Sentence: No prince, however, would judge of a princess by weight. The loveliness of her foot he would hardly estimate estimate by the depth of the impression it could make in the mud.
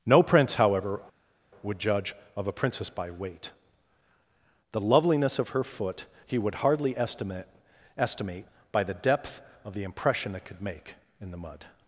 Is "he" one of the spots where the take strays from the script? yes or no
no